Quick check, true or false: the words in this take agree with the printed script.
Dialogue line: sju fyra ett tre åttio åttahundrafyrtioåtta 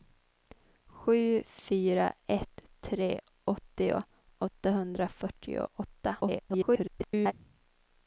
false